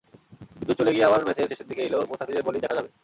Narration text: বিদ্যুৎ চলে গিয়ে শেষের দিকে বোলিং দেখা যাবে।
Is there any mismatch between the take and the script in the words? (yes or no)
yes